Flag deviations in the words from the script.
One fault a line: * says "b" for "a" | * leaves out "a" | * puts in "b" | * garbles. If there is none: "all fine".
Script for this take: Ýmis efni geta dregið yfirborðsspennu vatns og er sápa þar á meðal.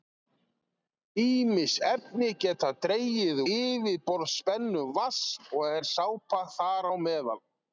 all fine